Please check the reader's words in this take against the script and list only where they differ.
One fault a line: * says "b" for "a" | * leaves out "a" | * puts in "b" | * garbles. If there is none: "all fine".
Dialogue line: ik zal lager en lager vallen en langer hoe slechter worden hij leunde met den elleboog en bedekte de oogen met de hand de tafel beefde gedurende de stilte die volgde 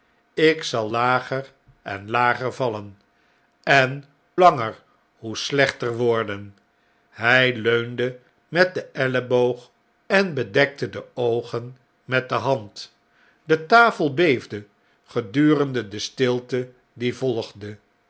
all fine